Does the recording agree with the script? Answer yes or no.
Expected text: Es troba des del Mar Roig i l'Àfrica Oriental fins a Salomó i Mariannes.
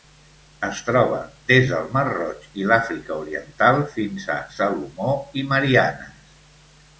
yes